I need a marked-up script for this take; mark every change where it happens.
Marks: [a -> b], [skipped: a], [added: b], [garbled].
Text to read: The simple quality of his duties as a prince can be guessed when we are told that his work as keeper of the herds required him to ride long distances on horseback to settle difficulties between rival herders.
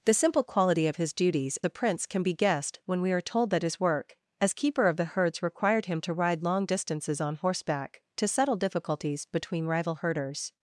The simple quality of his duties [skipped: as] a prince can be guessed when we are told that his work as keeper of the herds required him to ride long distances on horseback to settle difficulties between rival herders.